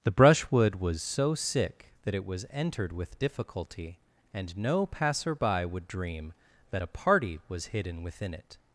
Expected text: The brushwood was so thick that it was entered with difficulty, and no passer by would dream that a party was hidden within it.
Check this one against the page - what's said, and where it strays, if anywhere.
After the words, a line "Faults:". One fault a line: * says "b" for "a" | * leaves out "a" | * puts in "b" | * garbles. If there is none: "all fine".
The brushwood was so sick that it was entered with difficulty, and no passer by would dream that a party was hidden within it.
Faults:
* says "sick" for "thick"